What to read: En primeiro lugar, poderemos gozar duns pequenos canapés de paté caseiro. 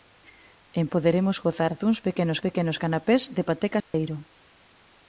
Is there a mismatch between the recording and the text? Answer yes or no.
yes